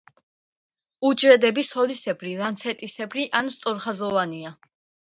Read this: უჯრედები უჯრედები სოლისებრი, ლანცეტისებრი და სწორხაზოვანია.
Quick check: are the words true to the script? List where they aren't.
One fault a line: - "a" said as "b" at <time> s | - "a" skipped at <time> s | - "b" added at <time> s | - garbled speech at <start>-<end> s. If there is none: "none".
- "უჯრედები" skipped at 1.6 s
- "და" said as "ან" at 3.4 s